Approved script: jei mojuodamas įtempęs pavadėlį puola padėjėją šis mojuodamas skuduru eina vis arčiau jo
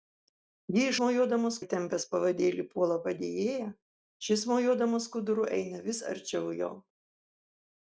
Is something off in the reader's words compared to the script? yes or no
no